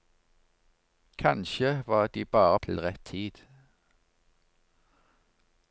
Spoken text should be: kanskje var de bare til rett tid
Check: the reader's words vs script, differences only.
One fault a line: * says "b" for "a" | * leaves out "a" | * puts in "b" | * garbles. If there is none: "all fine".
all fine